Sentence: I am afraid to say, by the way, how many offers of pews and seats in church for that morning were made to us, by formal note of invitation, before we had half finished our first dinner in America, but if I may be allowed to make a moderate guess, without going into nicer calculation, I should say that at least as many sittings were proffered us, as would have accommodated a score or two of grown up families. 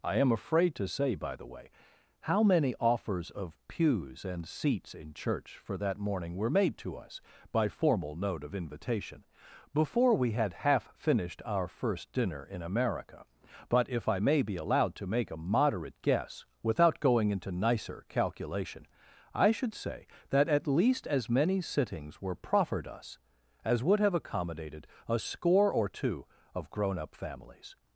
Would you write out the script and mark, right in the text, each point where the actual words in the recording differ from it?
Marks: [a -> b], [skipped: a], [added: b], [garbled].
I am afraid to say, by the way, how many offers of pews and seats in church for that morning were made to us, by formal note of invitation, before we had half finished our first dinner in America, but if I may be allowed to make a moderate guess, without going into nicer calculation, I should say that at least as many sittings were proffered us, as would have accommodated a score or two of grown up families.